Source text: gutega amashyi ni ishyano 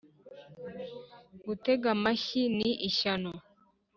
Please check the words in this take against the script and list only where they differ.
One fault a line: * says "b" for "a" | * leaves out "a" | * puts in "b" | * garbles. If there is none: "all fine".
all fine